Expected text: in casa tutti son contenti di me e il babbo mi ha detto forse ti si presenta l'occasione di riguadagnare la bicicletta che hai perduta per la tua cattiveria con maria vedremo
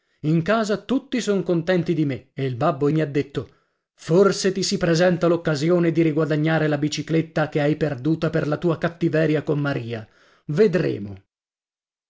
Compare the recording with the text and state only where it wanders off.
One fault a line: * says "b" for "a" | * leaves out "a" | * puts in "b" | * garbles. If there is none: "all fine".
all fine